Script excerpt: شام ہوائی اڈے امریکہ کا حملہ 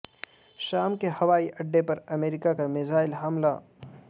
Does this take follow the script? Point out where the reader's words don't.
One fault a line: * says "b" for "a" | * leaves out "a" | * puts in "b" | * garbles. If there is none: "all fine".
* puts in "کے"
* puts in "پر"
* puts in "میزائل"